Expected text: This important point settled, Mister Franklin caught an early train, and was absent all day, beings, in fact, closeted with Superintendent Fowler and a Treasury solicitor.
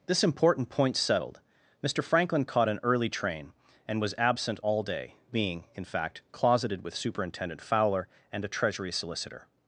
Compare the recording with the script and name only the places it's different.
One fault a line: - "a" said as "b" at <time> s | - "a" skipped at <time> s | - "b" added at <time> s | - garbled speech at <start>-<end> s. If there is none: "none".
- "beings" said as "being" at 5.3 s